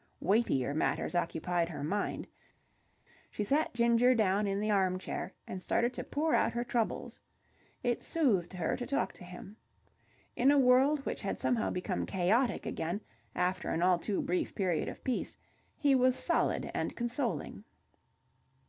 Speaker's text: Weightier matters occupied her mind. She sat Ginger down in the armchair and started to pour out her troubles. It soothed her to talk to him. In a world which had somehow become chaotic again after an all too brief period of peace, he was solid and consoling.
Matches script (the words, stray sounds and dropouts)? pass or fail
pass